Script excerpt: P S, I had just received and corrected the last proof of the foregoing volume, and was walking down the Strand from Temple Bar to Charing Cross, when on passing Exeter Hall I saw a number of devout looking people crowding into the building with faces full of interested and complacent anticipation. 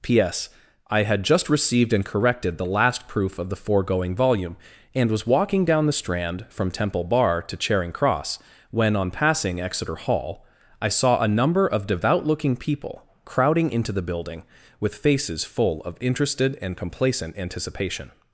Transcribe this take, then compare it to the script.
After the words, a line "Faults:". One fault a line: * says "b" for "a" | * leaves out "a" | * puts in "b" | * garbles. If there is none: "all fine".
P S, I had just received and corrected the last proof of the foregoing volume, and was walking down the Strand from Temple Bar to Charing Cross, when on passing Exeter Hall I saw a number of devout looking people crowding into the building with faces full of interested and complacent anticipation.
Faults:
all fine